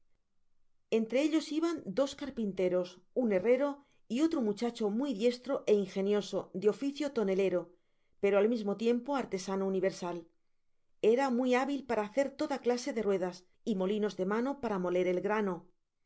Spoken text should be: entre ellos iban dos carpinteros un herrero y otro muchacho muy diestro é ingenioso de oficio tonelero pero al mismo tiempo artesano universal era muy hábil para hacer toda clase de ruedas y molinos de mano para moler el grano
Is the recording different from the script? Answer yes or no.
no